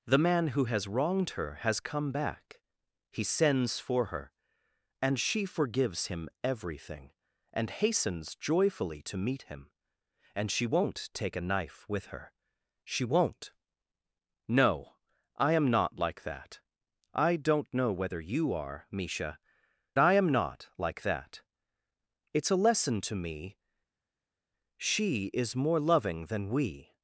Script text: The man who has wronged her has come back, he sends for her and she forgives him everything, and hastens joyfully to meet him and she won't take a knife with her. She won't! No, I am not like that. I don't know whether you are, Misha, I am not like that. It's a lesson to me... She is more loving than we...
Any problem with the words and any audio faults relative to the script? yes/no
no